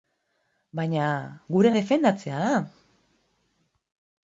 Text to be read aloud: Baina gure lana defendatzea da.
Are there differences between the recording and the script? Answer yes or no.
yes